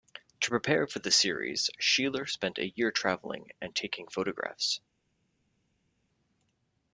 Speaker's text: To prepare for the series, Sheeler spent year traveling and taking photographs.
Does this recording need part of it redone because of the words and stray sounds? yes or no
yes